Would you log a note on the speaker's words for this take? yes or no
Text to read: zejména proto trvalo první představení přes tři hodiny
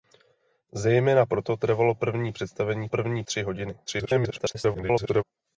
yes